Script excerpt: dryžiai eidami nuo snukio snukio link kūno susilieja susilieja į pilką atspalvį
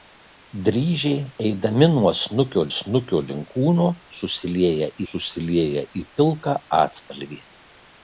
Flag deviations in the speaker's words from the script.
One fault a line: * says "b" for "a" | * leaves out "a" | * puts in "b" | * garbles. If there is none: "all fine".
all fine